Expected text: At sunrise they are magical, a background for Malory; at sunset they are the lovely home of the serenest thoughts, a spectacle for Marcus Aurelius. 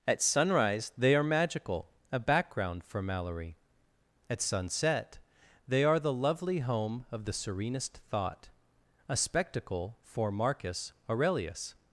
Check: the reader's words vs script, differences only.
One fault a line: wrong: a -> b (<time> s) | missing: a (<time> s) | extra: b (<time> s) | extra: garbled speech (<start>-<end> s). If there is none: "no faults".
wrong: thoughts -> thought (8.1 s)